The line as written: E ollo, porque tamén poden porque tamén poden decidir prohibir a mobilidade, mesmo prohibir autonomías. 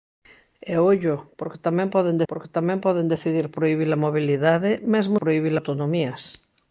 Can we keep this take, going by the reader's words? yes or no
yes